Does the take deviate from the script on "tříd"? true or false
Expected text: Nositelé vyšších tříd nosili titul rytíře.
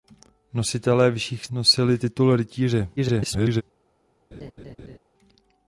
true